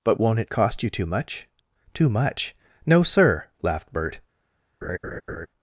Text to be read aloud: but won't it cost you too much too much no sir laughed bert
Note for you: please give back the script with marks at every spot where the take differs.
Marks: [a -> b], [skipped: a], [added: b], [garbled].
but won't it cost you too much too much no sir laughed bert